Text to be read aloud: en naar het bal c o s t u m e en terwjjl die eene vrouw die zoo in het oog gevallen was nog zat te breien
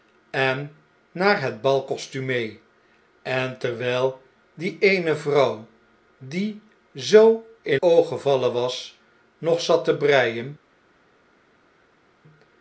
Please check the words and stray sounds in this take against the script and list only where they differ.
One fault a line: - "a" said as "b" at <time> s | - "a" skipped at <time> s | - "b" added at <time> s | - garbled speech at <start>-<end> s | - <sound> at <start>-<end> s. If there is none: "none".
- "het" skipped at 7.8 s